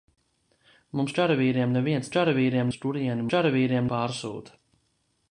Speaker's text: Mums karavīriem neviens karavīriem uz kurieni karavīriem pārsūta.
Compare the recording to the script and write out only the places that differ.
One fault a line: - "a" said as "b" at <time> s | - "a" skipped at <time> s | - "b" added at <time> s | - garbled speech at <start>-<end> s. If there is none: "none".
none